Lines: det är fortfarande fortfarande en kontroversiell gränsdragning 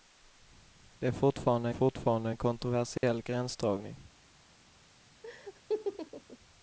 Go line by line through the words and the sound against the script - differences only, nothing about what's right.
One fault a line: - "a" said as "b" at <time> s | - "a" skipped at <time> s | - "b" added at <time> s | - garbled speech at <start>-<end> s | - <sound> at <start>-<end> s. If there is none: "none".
- dropout at 3.0-3.0 s
- laugh at 5.2-6.4 s